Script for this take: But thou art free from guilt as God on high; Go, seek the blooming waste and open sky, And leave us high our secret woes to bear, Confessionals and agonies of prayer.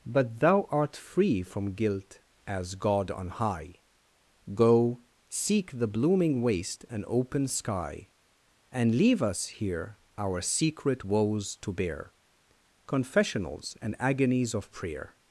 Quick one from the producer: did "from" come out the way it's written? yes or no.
yes